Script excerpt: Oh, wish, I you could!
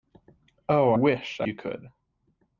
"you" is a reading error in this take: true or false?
false